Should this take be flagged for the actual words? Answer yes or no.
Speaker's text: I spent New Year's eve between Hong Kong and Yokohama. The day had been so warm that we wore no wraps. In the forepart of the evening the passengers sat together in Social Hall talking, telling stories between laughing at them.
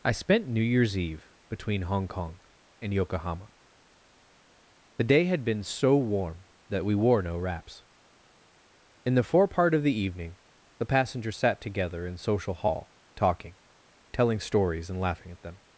yes